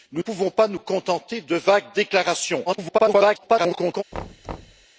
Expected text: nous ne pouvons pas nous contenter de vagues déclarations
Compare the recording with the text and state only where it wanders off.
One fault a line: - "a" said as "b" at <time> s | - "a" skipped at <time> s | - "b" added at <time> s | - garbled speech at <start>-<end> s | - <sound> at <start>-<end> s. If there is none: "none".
- "ne" skipped at 0.2 s
- garbled speech at 2.7-4.0 s
- thud at 4.1-4.9 s